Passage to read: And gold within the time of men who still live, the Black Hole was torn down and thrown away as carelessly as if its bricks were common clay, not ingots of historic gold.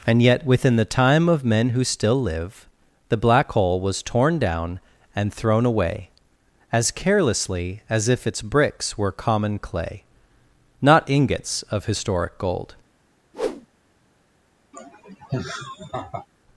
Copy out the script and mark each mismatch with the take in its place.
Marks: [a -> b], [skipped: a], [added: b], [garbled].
And [gold -> yet] within the time of men who still live, the Black Hole was torn down and thrown away as carelessly as if its bricks were common clay, not ingots of historic gold.